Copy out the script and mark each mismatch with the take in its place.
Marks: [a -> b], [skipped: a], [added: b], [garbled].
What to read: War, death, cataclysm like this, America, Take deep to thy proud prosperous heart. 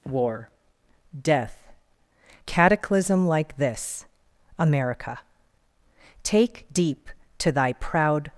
War, death, cataclysm like this, America, Take deep to thy proud [skipped: prosperous heart.]